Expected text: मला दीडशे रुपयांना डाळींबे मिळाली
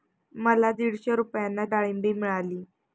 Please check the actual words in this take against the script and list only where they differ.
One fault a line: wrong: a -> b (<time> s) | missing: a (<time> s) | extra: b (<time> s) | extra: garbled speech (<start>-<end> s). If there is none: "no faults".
no faults